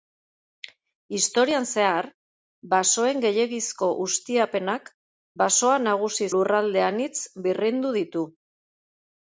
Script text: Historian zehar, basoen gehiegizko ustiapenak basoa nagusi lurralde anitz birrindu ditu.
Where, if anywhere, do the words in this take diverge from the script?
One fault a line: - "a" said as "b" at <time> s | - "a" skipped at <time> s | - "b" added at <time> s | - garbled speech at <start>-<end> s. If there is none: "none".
none